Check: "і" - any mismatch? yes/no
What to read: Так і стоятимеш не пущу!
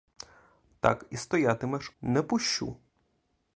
no